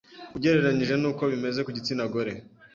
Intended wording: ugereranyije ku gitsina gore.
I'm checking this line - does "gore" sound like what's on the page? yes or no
yes